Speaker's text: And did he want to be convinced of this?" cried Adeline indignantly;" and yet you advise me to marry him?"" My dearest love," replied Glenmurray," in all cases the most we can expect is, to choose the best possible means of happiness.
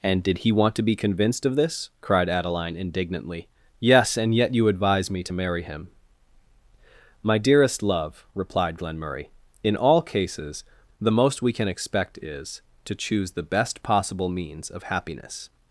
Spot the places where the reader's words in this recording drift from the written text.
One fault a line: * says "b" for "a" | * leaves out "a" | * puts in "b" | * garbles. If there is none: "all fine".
* puts in "yes"